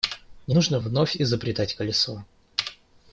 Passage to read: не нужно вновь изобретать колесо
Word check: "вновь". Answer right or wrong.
right